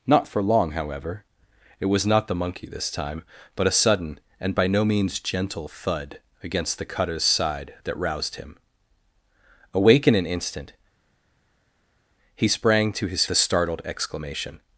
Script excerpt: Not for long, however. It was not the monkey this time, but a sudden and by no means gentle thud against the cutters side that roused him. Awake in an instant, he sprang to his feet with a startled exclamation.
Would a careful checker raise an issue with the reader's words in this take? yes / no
yes